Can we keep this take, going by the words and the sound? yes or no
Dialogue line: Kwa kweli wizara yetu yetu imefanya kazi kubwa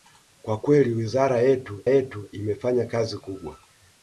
yes